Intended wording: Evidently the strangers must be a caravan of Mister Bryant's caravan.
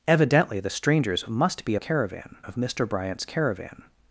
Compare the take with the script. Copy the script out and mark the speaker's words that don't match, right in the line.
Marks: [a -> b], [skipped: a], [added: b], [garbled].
Evidently the strangers must be a caravan of Mister Bryant's caravan.